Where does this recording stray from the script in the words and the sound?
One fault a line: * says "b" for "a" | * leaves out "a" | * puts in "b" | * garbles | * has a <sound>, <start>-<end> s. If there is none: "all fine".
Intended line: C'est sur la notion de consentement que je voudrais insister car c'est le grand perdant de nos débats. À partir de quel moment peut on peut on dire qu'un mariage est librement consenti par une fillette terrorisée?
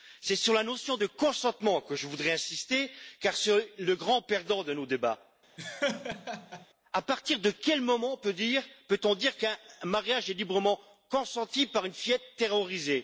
* has a laugh, 5.6-6.7 s
* leaves out "peut on"